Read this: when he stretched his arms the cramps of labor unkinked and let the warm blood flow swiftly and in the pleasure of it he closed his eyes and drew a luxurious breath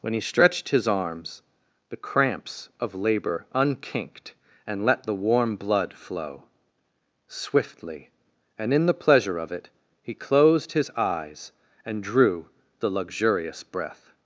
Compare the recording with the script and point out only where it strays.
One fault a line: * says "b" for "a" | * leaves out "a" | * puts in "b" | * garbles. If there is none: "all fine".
* says "the" for "a"